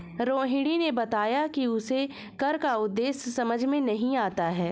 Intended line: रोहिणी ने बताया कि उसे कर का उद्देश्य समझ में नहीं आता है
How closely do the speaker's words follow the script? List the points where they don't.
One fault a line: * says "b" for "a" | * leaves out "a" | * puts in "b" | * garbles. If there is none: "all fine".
all fine